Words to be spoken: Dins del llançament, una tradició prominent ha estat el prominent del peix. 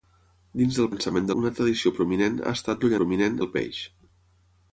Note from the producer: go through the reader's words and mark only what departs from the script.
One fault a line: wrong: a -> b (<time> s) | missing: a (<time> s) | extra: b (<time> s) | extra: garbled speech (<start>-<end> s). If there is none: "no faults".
no faults